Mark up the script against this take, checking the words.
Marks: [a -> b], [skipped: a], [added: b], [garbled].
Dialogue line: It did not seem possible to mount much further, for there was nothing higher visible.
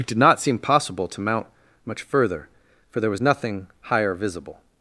It did not seem possible to mount much further, for there was nothing higher visible.